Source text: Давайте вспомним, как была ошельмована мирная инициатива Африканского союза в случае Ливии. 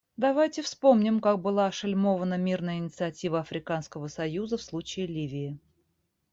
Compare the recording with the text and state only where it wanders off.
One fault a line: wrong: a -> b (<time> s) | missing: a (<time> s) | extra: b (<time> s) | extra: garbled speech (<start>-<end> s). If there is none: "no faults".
no faults